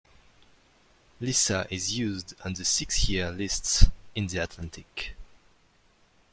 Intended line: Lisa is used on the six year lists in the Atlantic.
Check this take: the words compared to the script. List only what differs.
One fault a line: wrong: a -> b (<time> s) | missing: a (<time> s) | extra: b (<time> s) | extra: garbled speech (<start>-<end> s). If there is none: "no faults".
no faults